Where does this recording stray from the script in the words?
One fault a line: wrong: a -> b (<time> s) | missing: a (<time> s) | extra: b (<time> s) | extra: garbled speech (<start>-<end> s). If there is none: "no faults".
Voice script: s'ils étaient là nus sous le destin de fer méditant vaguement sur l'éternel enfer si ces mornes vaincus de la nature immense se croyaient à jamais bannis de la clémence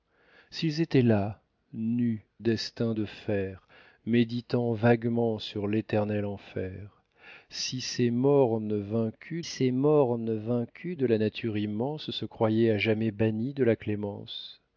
missing: sous le (2.2 s)
extra: ces mornes vaincus (9.4 s)